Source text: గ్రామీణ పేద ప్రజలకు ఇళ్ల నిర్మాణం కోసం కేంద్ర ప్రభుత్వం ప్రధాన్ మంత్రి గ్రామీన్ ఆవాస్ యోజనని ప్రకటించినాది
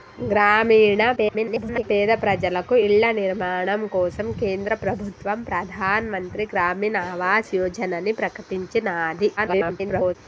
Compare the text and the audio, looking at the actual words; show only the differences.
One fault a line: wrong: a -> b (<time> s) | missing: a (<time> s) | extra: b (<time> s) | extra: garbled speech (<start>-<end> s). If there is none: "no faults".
extra: garbled speech (1.2-1.8 s)
extra: garbled speech (9.4-10.2 s)